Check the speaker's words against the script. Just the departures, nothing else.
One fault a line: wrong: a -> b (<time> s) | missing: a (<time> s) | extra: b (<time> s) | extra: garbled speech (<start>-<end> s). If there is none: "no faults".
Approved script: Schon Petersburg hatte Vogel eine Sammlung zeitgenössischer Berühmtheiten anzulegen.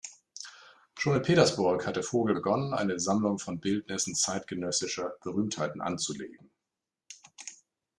extra: in (1.1 s)
extra: begonnen (2.3 s)
extra: von Bildnissen (3.4 s)